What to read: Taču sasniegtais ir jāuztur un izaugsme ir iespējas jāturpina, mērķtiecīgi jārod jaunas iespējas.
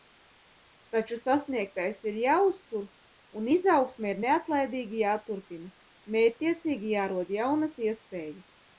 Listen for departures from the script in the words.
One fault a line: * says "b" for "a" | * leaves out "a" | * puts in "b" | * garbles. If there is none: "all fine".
* says "neatlaidīgi" for "iespējas"